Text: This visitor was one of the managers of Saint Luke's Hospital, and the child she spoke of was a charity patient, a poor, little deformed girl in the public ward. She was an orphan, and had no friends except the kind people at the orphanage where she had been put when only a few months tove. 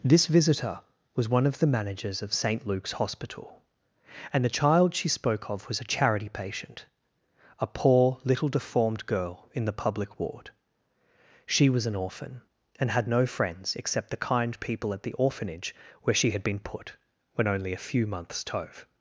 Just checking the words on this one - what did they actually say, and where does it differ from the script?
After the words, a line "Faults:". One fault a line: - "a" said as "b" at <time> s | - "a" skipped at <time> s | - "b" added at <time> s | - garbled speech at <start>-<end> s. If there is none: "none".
This visitor was one of the managers of Saint Luke's Hospital, and the child she spoke of was a charity patient, a poor, little deformed girl in the public ward. She was an orphan, and had no friends except the kind people at the orphanage where she had been put when only a few months tove.
Faults:
none